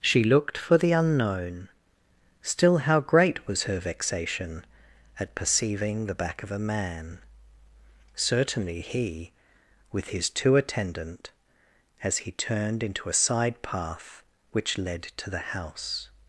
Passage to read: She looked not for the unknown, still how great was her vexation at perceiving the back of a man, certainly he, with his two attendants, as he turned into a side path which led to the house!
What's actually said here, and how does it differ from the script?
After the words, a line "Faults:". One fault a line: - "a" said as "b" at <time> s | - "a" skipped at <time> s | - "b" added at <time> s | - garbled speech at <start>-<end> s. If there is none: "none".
She looked for the unknown, still how great was her vexation at perceiving the back of a man, certainly he, with his two attendant, as he turned into a side path which led to the house!
Faults:
- "not" skipped at 0.6 s
- "attendants" said as "attendant" at 10.6 s